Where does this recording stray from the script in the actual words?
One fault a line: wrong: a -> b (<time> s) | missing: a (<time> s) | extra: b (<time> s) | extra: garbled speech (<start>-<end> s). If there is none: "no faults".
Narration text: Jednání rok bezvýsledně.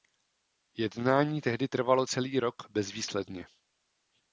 extra: tehdy trvalo celý (1.4 s)